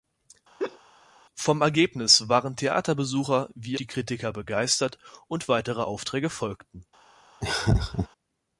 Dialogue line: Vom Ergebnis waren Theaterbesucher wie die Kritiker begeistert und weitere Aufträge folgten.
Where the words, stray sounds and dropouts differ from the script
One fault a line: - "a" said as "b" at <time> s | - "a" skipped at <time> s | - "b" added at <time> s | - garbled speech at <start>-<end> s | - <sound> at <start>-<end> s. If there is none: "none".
- laugh at 0.6-0.8 s
- laugh at 7.4-8.1 s